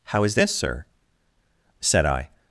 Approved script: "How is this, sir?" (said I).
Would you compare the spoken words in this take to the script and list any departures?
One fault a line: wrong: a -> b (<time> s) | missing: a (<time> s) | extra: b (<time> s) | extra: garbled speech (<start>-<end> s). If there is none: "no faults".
no faults